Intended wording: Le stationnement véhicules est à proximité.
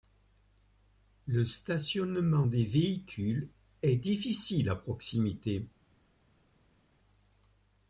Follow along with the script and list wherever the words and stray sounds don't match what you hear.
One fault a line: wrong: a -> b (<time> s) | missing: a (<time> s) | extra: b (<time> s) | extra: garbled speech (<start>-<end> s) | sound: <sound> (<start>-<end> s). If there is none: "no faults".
extra: des (2.4 s)
extra: difficile (4.0 s)